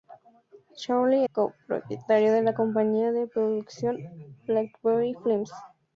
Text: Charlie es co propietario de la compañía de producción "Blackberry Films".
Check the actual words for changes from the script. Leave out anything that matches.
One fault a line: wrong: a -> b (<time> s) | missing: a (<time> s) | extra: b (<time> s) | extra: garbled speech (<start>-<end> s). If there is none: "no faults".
missing: es (1.3 s)